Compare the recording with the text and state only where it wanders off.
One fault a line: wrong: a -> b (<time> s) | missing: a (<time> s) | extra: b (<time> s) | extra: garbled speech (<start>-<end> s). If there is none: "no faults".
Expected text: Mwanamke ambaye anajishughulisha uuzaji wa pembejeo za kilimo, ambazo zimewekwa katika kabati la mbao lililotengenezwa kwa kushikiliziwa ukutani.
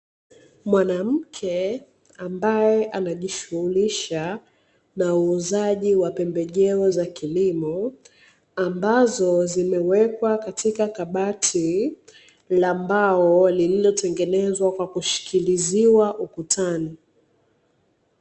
extra: na (5.0 s)